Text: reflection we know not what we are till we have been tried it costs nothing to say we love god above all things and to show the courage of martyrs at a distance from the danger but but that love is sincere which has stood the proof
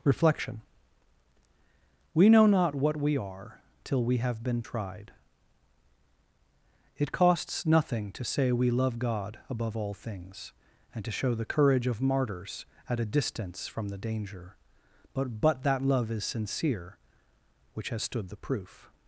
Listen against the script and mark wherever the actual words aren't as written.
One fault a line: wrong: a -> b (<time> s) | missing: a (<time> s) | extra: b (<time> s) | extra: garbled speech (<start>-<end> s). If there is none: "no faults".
no faults